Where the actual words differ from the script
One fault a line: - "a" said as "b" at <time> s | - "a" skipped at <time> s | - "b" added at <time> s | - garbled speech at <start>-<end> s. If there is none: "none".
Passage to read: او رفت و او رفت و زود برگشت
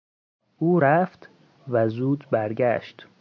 - "او رفت و" skipped at 1.9 s